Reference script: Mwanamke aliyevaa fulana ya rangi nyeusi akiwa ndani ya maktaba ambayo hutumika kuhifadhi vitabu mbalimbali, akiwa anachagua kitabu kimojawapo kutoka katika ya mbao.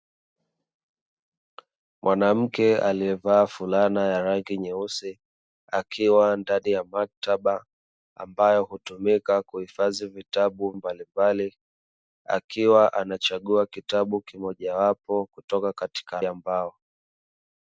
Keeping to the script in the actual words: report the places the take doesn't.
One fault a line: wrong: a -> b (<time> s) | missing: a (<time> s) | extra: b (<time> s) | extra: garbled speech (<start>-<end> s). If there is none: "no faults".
no faults